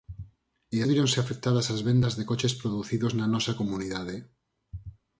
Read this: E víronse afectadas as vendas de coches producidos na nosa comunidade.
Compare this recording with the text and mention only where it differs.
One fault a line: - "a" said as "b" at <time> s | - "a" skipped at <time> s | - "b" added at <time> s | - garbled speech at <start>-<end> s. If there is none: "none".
none